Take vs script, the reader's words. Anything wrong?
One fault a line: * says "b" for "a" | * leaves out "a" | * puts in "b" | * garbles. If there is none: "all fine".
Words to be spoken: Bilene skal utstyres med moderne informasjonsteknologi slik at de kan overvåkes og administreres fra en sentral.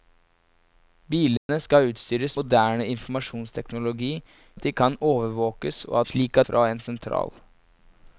* leaves out "med"
* leaves out "slik"
* says "slik" for "administreres"